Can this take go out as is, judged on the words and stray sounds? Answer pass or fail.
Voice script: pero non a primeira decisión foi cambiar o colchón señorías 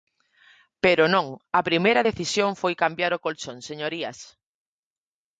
pass